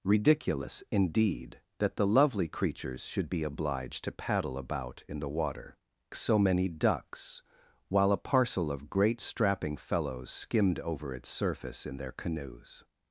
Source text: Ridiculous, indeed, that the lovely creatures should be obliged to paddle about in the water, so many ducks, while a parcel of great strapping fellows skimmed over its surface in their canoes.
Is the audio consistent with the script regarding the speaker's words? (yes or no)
yes